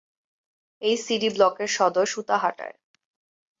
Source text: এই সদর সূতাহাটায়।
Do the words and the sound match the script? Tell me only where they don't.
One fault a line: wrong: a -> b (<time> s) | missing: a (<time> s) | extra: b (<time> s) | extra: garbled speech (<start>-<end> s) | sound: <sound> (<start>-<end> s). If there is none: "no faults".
extra: সিডি ব্লকের (1.0 s)